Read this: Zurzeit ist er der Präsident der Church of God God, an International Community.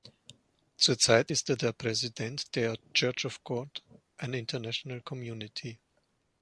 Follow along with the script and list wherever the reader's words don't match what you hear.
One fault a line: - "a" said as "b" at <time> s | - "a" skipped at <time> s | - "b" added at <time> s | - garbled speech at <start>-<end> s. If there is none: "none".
- "God" skipped at 3.8 s